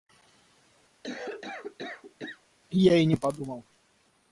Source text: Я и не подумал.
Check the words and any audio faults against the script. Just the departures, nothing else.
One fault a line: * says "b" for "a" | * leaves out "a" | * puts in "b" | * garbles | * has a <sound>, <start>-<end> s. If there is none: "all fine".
* has a cough, 1.0-2.4 s